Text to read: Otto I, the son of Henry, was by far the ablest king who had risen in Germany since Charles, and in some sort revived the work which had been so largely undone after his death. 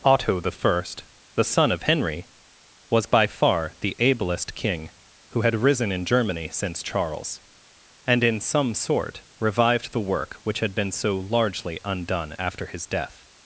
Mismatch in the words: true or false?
false